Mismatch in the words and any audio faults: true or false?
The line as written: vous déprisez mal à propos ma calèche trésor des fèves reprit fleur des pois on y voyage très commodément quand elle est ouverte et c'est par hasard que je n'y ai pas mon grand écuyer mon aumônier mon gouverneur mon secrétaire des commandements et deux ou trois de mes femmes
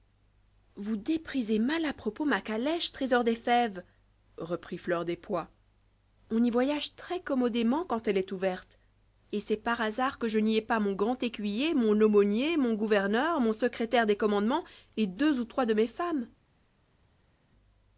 false